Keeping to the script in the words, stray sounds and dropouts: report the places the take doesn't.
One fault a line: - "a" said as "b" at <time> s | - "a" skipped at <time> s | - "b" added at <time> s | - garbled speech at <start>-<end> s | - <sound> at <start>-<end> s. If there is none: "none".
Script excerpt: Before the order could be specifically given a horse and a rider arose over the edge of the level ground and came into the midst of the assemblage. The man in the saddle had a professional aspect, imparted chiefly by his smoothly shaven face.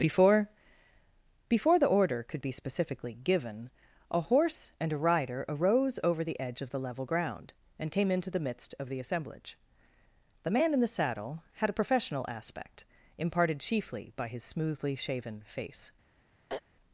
- "before" added at 1.5 s
- throat clearing at 16.5-16.6 s